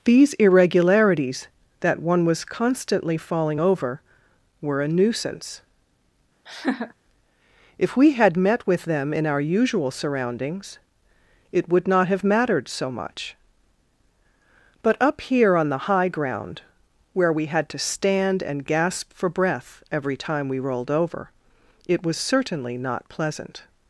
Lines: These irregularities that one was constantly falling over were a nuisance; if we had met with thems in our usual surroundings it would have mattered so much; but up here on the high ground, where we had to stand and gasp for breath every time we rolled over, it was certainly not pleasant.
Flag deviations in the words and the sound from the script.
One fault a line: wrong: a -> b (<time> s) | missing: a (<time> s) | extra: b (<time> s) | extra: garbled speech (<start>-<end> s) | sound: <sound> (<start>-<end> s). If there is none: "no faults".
sound: laugh (6.5-6.9 s)
wrong: thems -> them (8.8 s)
extra: not (11.9 s)